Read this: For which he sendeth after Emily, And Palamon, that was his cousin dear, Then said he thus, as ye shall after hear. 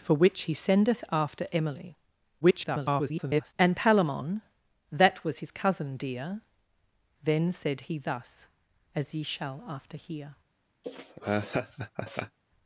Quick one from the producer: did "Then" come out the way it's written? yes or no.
yes